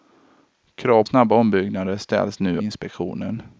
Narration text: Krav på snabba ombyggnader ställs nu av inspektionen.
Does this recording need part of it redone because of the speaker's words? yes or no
yes